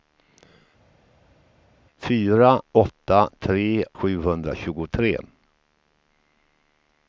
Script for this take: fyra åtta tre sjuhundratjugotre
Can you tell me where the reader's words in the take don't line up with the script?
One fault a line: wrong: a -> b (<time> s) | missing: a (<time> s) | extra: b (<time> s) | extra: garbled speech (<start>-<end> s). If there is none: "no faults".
no faults